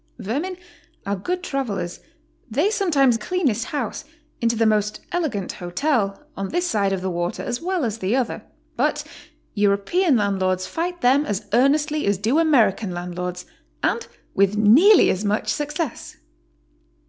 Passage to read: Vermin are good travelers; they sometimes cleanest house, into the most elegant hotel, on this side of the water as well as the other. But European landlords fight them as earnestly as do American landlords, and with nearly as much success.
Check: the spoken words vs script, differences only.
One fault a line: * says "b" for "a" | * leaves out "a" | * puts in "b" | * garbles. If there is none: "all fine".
all fine